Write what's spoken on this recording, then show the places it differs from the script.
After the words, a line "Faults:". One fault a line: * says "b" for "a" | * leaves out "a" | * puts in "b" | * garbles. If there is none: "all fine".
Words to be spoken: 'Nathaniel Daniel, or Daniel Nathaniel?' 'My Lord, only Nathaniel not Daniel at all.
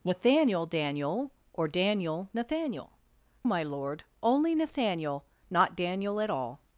'Nathaniel Daniel, or Daniel Nathaniel?' 'My Lord, only Nathaniel not Daniel at all.
Faults:
all fine